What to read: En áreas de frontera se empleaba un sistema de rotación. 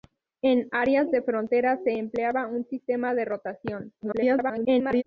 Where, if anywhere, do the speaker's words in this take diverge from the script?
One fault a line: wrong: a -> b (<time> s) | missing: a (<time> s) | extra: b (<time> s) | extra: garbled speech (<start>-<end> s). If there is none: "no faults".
extra: garbled speech (4.0-5.0 s)